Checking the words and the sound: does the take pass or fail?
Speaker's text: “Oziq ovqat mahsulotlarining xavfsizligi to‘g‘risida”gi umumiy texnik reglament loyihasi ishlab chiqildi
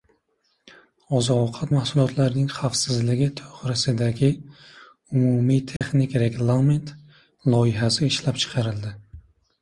fail